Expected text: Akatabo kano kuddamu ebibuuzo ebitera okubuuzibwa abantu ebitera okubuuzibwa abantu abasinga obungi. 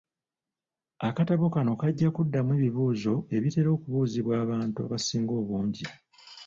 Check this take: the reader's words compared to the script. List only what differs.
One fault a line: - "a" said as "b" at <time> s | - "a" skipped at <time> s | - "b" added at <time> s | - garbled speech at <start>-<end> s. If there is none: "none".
- "kajja" added at 1.8 s
- "ebitera okubuuzibwa abantu" skipped at 4.8 s